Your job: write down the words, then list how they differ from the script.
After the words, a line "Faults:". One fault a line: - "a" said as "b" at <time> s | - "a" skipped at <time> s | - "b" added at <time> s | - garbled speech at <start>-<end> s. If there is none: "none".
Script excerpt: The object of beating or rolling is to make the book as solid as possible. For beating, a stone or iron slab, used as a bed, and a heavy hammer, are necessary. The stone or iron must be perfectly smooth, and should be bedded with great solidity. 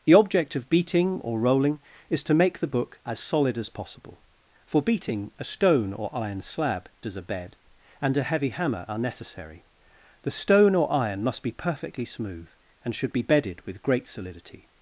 The object of beating or rolling is to make the book as solid as possible. For beating, a stone or iron slab, as a bed, and a heavy hammer, are necessary. The stone or iron must be perfectly smooth, and should be bedded with great solidity.
Faults:
- "used" skipped at 6.9 s